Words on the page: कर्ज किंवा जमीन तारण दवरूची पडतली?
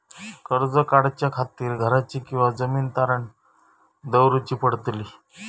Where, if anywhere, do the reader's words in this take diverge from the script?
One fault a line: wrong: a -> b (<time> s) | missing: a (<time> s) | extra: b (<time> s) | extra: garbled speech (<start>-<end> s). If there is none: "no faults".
extra: काढच्या खातीर घराची (0.9 s)